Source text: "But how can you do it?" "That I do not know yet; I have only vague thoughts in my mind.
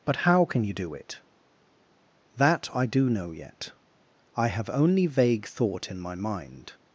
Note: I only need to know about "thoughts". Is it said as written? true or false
false